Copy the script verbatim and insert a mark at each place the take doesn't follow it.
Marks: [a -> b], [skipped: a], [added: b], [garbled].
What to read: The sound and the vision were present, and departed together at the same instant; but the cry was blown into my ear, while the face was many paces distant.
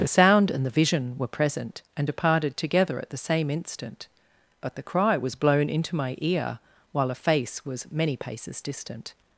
The sound and the vision were present, and departed together at the same instant; but the cry was blown into my ear, while [the -> a] face was many paces distant.